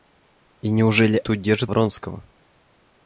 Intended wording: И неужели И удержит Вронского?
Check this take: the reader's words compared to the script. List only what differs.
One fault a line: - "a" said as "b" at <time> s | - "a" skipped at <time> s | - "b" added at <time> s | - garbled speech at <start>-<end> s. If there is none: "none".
none